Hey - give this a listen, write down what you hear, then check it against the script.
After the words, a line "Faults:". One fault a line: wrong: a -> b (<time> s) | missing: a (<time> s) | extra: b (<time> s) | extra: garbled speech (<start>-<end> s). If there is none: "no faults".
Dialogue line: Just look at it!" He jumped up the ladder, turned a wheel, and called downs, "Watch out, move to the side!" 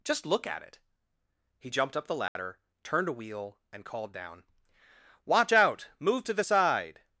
Just look at it!" He jumped up the ladder, turned a wheel, and called down, "Watch out, move to the side!"
Faults:
wrong: downs -> down (4.1 s)